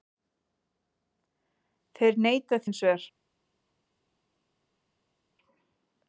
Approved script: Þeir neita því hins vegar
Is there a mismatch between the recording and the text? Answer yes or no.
yes